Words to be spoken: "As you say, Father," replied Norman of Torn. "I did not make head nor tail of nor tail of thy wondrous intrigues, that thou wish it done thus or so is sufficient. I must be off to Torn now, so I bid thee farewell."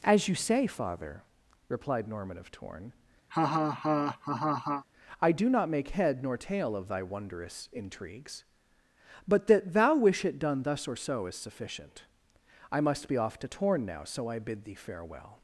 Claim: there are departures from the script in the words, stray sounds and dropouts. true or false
true